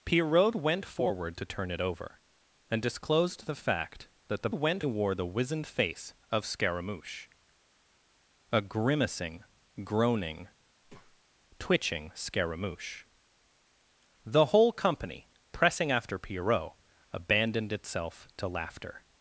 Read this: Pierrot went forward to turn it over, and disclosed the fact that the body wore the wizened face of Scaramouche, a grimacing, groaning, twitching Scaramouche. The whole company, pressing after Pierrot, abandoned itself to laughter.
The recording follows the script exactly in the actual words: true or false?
false